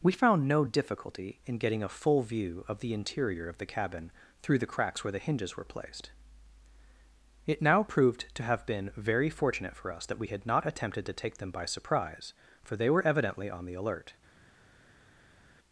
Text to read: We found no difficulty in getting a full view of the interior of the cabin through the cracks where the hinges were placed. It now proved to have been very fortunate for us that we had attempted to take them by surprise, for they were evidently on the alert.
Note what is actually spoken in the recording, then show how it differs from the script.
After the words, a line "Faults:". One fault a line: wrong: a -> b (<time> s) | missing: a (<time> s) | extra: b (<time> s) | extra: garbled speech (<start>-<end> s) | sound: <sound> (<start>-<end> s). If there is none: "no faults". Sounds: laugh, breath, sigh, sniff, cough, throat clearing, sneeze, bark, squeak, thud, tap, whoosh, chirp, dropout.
We found no difficulty in getting a full view of the interior of the cabin through the cracks where the hinges were placed. It now proved to have been very fortunate for us that we had not attempted to take them by surprise, for they were evidently on the alert.
Faults:
extra: not (10.5 s)